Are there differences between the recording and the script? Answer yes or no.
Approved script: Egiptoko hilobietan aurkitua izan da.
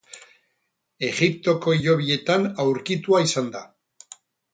no